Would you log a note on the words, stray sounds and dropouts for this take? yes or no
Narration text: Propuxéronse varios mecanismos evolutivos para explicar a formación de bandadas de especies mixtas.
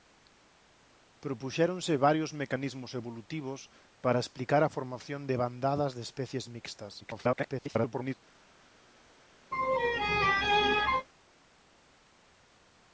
yes